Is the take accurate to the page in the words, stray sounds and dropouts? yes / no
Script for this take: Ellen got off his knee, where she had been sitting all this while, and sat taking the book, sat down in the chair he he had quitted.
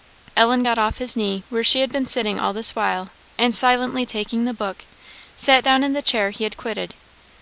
no